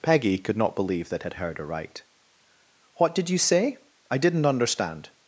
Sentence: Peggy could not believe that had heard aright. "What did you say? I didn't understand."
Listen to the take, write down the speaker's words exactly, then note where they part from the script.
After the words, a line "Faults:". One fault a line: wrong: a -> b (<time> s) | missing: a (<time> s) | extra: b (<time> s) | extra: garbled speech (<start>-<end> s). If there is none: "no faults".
Peggy could not believe that had heard aright. "What did you say? I didn't understand."
Faults:
no faults